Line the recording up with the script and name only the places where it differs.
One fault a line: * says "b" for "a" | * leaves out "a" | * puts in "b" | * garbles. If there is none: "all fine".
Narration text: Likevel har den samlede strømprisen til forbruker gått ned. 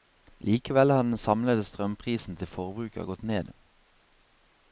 all fine